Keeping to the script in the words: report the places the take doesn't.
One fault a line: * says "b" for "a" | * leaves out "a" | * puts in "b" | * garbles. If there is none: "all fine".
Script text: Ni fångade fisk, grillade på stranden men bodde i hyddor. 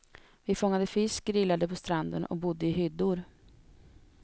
* says "Vi" for "Ni"
* says "och" for "men"